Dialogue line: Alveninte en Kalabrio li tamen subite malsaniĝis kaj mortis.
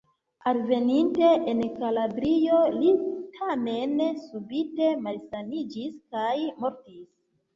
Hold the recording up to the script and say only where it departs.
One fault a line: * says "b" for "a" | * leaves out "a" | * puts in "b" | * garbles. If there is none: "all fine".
all fine